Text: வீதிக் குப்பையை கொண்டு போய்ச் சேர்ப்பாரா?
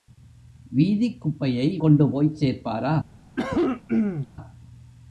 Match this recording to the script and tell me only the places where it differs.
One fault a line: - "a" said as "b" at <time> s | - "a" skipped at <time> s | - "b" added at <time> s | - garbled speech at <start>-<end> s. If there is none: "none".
none